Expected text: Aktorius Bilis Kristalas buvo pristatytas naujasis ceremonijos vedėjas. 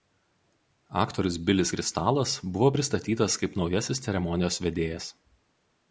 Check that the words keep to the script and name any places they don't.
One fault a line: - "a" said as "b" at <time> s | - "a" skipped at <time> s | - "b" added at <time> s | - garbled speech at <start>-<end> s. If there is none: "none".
- "kaip" added at 3.4 s